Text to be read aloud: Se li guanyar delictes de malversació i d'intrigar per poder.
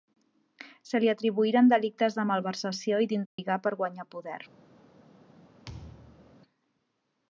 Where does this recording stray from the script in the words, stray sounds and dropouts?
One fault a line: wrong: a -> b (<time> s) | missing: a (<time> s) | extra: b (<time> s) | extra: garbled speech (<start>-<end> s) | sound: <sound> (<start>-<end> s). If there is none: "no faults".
wrong: guanyar -> atribuïren (1.1 s)
sound: dropout (3.3-3.4 s)
extra: guanyar (3.8 s)
sound: thud (5.6-6.4 s)